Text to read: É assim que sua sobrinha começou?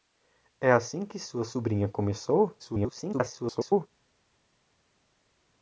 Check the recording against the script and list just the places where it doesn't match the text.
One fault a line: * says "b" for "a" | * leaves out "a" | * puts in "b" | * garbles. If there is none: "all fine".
* garbles